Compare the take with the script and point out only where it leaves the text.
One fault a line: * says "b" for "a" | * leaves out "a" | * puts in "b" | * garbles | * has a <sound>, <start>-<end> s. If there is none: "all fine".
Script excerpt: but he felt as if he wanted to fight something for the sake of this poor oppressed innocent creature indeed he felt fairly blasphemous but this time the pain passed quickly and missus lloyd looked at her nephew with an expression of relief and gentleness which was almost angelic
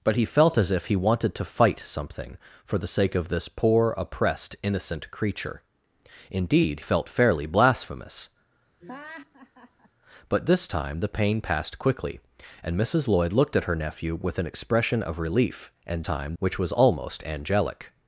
* leaves out "he"
* has a laugh, 8.8-9.9 s
* says "time" for "gentleness"